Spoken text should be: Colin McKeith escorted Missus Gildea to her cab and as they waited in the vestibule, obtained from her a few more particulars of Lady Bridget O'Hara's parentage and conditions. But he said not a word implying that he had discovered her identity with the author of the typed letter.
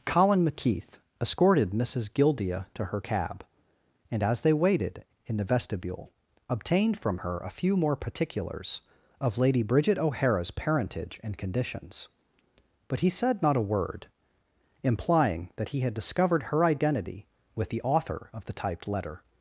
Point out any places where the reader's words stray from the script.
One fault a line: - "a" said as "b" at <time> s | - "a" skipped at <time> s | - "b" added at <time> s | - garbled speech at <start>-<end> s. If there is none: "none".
none